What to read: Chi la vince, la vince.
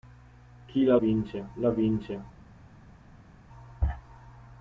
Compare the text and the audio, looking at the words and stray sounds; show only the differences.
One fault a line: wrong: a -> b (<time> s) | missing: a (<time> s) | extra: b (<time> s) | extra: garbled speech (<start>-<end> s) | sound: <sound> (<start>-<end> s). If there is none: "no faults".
no faults